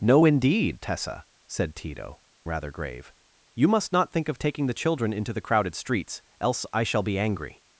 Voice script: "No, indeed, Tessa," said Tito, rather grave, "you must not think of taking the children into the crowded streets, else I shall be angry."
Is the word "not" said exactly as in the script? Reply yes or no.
yes